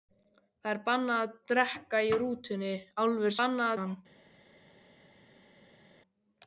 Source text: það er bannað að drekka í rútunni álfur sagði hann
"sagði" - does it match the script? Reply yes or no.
no